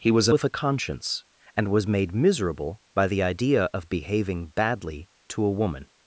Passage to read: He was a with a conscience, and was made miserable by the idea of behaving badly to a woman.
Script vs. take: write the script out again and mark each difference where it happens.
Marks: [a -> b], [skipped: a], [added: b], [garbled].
He was a with a conscience, and was made miserable by the idea of behaving badly to a woman.